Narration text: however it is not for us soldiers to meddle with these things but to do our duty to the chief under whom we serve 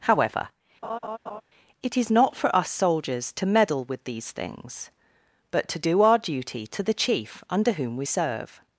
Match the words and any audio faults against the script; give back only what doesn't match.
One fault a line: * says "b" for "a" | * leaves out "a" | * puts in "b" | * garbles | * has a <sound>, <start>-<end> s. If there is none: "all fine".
* has a laugh, 0.8-1.4 s